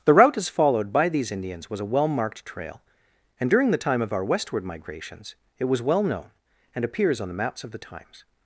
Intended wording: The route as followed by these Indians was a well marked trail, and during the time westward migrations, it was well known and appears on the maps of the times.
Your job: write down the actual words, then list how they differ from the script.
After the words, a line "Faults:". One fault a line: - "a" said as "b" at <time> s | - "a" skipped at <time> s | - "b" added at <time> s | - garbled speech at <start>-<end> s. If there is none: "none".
The route as followed by these Indians was a well marked trail, and during the time of our westward migrations, it was well known and appears on the maps of the times.
Faults:
- "of our" added at 4.0 s